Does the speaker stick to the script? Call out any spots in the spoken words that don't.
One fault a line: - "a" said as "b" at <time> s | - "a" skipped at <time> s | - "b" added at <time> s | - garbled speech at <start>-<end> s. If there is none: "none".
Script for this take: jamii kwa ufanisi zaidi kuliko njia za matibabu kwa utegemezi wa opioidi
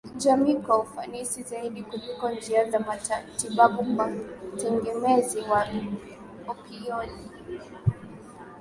none